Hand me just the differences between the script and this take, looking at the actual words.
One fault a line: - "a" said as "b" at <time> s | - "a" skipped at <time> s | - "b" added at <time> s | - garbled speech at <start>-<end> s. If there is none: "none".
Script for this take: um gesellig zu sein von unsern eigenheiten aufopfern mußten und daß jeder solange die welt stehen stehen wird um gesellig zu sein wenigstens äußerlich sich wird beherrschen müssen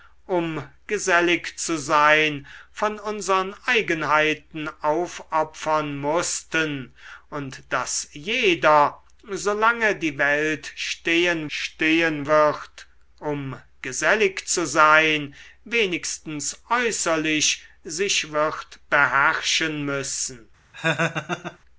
none